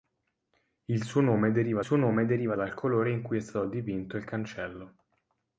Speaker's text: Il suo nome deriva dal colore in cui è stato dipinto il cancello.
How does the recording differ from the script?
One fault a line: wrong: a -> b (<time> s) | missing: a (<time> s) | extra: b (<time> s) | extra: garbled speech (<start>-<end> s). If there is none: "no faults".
extra: suo nome deriva (1.8 s)